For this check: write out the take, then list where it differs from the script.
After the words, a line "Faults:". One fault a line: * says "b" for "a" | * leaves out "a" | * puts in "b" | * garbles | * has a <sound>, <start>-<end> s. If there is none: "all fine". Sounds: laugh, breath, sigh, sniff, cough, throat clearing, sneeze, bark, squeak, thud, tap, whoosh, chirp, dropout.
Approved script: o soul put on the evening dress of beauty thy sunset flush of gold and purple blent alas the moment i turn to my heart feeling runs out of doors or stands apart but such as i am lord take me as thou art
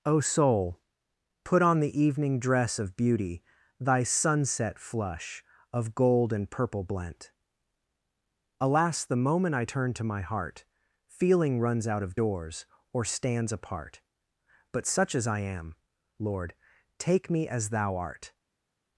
o soul put on the evening dress of beauty thy sunset flush of gold and purple blent alas the moment i turn to my heart feeling runs out of doors or stands apart but such as i am lord take me as thou art
Faults:
all fine